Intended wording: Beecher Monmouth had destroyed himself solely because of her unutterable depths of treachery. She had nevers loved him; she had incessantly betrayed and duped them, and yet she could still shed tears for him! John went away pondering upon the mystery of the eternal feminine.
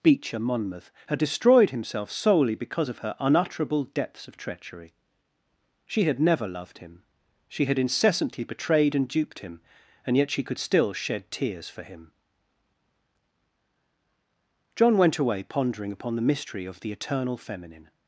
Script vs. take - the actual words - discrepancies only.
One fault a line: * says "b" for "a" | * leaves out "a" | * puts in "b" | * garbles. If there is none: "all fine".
* says "never" for "nevers"
* says "him" for "them"